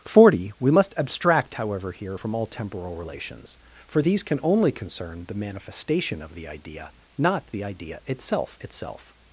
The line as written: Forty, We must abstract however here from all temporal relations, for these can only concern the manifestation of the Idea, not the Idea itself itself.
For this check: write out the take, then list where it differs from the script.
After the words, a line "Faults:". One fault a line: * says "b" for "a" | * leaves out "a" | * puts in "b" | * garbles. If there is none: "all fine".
Forty, We must abstract however here from all temporal relations, for these can only concern the manifestation of the Idea, not the Idea itself itself.
Faults:
all fine